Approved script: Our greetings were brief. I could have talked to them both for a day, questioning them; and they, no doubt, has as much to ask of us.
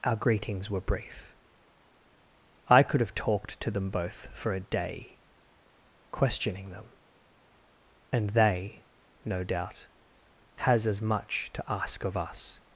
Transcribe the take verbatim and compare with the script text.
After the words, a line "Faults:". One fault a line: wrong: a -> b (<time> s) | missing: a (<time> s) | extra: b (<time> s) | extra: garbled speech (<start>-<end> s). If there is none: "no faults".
Our greetings were brief. I could have talked to them both for a day, questioning them; and they, no doubt, has as much to ask of us.
Faults:
no faults